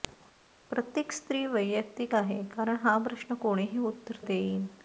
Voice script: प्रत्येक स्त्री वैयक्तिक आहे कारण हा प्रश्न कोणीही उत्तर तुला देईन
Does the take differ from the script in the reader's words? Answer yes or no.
yes